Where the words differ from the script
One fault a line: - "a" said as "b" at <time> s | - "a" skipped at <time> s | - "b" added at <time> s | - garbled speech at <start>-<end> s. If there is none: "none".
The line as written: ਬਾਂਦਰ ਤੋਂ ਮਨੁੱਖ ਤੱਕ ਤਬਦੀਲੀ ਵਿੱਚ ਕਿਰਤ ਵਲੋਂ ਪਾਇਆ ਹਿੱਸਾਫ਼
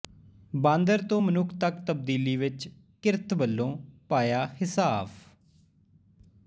none